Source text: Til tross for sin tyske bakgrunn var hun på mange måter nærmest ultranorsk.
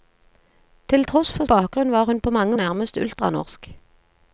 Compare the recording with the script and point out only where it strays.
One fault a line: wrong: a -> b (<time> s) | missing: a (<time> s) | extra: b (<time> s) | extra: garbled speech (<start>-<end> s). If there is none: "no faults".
missing: sin tyske (1.4 s)
missing: måter (2.6 s)